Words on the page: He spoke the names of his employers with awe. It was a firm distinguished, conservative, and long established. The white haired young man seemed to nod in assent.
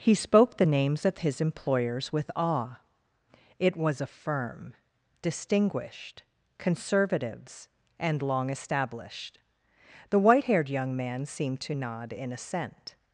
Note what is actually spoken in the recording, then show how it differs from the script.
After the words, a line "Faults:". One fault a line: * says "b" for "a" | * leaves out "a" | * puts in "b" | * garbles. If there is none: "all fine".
He spoke the names of his employers with awe. It was a firm distinguished, conservatives, and long established. The white haired young man seemed to nod in assent.
Faults:
* says "conservatives" for "conservative"